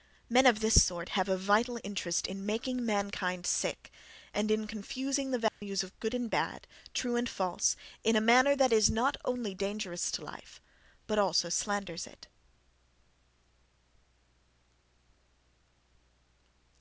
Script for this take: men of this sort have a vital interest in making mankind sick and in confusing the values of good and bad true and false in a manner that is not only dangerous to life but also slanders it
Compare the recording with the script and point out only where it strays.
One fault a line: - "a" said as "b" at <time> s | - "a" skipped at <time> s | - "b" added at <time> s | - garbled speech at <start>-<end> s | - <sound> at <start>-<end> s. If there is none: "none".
- dropout at 5.5-5.6 s